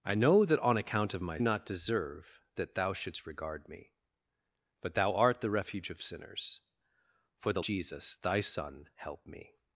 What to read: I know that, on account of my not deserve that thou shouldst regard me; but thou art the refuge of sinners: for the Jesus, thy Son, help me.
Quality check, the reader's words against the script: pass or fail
pass